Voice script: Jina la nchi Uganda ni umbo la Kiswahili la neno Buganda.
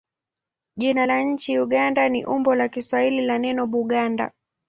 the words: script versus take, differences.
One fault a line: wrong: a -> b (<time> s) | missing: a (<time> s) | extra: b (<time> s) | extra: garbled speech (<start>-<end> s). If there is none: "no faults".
no faults